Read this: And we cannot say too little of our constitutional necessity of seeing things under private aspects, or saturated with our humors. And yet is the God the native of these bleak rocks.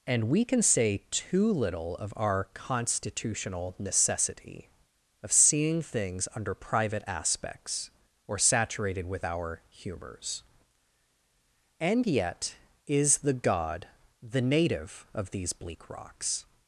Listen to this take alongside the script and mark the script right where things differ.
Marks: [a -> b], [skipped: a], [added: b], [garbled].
And we [cannot -> can] say too little of our constitutional necessity of seeing things under private aspects, or saturated with our humors. And yet is the God the native of these bleak rocks.